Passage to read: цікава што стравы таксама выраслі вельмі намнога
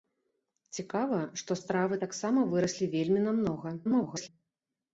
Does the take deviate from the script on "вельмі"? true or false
false